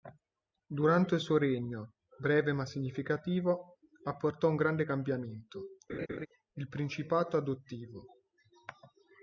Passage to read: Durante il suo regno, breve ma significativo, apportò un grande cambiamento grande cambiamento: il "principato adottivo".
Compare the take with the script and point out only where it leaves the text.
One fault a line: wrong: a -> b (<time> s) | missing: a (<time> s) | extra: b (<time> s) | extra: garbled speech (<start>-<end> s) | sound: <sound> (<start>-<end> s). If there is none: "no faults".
missing: grande cambiamento (5.7 s)
sound: laugh (5.9-6.3 s)